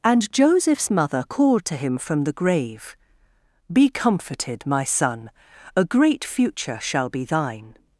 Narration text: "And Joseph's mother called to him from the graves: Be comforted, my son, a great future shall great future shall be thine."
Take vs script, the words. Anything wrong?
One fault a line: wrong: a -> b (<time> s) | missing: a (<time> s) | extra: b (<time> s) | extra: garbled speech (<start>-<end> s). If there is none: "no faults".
wrong: graves -> grave (2.3 s)
missing: great future shall (7.1 s)